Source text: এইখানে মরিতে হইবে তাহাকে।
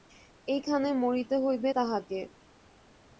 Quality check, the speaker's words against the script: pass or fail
pass